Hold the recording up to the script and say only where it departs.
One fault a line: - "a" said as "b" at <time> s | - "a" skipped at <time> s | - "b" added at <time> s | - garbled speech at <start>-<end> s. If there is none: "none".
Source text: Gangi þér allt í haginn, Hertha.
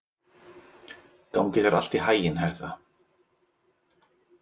none